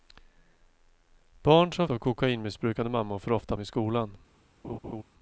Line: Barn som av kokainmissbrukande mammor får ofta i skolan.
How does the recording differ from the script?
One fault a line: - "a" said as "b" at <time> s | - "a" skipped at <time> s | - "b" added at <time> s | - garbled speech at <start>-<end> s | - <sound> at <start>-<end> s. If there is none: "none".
- laugh at 4.6-5.0 s